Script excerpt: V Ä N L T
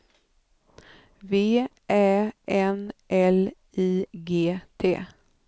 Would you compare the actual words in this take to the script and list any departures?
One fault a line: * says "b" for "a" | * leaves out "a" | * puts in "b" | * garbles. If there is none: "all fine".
* puts in "I G"